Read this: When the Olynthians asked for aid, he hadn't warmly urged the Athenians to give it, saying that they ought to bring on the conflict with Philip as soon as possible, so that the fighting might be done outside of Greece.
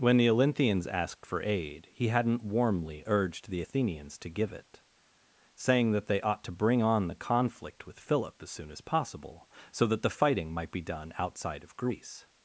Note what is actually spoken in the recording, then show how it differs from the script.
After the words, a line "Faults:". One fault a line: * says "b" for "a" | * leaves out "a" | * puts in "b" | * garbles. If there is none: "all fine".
When the Olynthians asked for aid, he hadn't warmly urged the Athenians to give it, saying that they ought to bring on the conflict with Philip as soon as possible, so that the fighting might be done outside of Greece.
Faults:
all fine